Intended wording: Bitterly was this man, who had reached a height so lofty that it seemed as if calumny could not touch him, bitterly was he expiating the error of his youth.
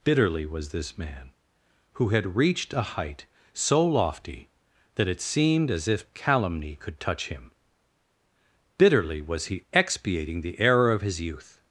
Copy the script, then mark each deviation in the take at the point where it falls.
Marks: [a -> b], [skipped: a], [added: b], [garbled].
Bitterly was this man, who had reached a height so lofty that it seemed as if calumny could [skipped: not] touch him, bitterly was he expiating the error of his youth.